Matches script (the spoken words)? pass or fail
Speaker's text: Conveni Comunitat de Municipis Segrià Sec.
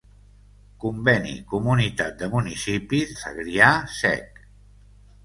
pass